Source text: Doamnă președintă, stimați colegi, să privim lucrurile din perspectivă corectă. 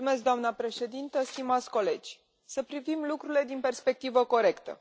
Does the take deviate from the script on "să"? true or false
false